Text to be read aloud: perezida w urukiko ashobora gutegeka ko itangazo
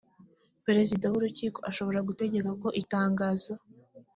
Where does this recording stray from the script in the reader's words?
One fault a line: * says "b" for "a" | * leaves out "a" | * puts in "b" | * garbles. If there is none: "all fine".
all fine